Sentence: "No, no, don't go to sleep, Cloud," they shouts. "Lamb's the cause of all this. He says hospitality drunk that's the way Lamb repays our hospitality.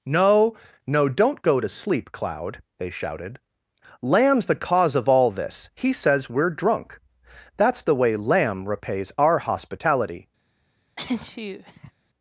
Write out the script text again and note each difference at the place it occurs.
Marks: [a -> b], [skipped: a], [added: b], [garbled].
"No, no, don't go to sleep, Cloud," they [shouts. -> shouted] "Lamb's the cause of all this. He says [hospitality -> we're] drunk that's the way Lamb repays our hospitality.